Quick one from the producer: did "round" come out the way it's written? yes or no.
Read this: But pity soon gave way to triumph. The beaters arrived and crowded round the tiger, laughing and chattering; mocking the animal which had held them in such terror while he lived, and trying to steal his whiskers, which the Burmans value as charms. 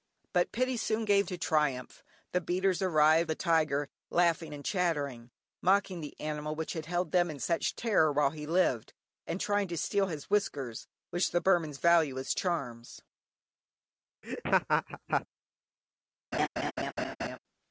no